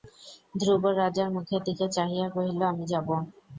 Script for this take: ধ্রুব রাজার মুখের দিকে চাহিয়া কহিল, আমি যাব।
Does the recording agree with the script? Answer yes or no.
yes